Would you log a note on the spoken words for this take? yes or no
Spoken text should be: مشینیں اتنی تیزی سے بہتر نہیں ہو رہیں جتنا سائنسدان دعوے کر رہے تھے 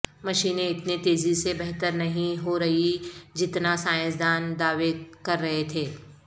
no